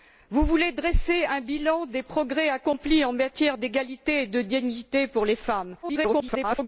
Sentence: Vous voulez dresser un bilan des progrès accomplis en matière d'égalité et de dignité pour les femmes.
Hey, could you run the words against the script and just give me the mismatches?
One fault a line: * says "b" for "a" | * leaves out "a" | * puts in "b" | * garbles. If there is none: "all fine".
* garbles